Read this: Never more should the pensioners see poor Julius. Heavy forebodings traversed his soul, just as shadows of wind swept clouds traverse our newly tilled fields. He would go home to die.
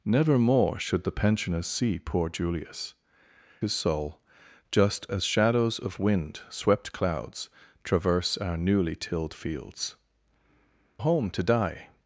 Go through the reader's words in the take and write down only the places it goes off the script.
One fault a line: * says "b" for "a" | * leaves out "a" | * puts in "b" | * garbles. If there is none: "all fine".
* leaves out "Heavy forebodings traversed"
* leaves out "He would go"